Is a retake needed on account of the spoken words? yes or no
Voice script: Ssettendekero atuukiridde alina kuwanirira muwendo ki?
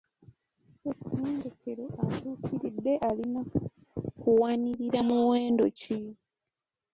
no